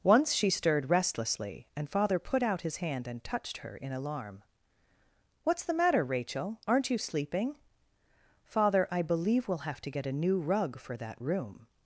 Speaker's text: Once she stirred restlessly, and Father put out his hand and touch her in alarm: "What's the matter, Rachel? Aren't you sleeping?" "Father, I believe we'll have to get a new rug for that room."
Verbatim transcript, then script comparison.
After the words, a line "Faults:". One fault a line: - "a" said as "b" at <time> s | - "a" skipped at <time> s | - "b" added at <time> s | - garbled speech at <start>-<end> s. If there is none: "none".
Once she stirred restlessly, and Father put out his hand and touched her in alarm: "What's the matter, Rachel? Aren't you sleeping?" "Father, I believe we'll have to get a new rug for that room."
Faults:
- "touch" said as "touched" at 3.2 s